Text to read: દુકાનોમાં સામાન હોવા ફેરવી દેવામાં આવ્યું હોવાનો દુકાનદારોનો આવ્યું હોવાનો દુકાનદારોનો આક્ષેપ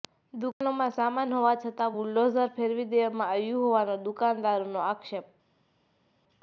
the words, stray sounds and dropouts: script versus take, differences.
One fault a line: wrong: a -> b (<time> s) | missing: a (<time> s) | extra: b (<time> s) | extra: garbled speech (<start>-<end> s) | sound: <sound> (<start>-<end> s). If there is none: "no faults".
extra: છતાં બુલડોઝર (1.5 s)
missing: આવ્યું હોવાનો દુકાનદારોનો (4.9 s)